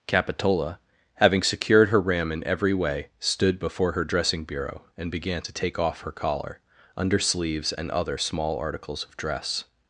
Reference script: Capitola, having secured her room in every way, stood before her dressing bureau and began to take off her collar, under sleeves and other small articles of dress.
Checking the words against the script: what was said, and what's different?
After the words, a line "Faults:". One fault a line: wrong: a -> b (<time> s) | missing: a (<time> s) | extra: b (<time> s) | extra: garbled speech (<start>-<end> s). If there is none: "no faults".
Capitola, having secured her ram in every way, stood before her dressing bureau and began to take off her collar, under sleeves and other small articles of dress.
Faults:
wrong: room -> ram (2.0 s)